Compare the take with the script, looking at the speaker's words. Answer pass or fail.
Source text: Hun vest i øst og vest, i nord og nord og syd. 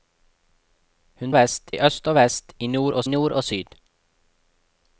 pass